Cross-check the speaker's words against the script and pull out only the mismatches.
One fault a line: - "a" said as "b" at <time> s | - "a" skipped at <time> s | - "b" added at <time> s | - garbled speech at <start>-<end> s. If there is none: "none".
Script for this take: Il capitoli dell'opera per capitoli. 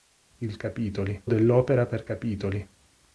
none